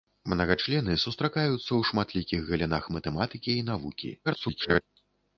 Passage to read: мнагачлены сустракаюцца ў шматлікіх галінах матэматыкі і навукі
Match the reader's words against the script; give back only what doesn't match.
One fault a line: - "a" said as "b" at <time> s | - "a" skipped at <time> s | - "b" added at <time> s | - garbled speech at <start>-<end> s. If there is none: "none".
- garbled speech at 4.2-4.8 s